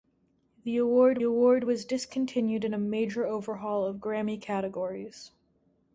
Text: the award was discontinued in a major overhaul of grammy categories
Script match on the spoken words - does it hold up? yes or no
no